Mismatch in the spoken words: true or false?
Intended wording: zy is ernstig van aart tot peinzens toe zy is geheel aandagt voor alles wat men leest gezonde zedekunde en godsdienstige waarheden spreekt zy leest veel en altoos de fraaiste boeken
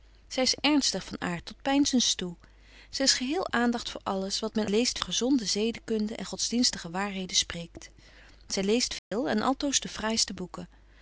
false